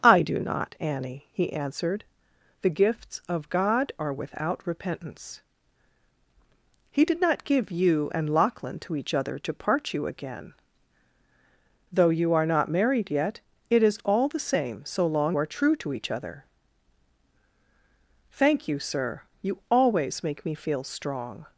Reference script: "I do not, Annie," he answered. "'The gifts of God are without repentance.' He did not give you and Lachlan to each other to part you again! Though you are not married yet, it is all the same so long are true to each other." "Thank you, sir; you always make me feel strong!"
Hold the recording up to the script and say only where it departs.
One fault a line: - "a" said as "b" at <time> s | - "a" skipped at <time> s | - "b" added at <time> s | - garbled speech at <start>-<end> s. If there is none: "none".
none